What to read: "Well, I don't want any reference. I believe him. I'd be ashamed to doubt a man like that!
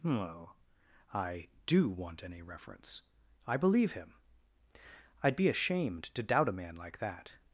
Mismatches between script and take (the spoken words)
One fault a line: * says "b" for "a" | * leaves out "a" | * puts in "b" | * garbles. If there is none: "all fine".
* says "do" for "don't"